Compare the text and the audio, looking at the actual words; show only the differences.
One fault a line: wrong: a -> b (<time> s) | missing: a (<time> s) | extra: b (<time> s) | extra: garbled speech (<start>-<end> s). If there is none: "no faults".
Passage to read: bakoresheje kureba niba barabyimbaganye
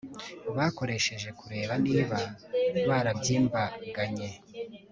no faults